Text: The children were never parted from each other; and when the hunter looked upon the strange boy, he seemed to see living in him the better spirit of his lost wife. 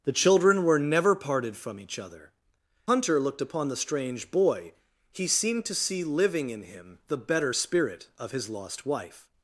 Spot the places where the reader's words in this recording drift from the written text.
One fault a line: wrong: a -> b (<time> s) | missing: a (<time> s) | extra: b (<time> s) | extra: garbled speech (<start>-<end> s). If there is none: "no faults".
missing: and when the (2.3 s)